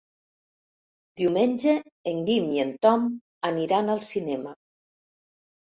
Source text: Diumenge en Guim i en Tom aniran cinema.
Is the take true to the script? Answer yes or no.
no